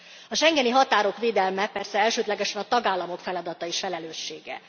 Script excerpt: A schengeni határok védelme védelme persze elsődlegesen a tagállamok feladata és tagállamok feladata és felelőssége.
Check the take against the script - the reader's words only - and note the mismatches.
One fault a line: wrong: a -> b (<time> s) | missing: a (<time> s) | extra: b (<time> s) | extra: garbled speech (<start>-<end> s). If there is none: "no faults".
missing: védelme (1.7 s)
missing: tagállamok feladata és (3.8 s)